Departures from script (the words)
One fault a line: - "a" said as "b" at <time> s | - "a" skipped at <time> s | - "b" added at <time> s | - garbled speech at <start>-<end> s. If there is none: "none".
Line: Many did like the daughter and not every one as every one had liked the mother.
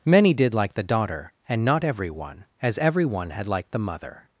none